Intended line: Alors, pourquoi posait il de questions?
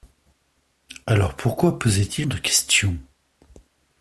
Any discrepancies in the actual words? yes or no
no